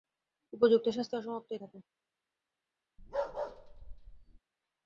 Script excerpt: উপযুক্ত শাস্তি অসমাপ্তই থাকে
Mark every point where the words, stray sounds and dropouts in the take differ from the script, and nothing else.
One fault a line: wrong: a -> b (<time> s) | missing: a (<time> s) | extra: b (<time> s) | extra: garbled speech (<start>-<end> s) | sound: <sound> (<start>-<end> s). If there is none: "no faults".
sound: bark (3.0-4.4 s)